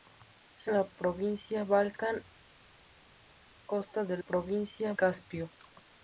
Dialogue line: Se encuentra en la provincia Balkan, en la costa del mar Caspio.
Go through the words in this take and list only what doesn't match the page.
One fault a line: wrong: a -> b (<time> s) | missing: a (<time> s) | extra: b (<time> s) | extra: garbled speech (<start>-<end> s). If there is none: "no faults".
missing: encuentra (0.7 s)
missing: en la (2.2 s)
wrong: mar -> provincia (4.2 s)